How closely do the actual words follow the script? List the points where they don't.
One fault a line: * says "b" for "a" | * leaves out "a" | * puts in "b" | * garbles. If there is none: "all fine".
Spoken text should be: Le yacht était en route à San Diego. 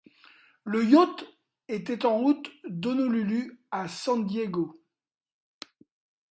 * puts in "d'Honolulu"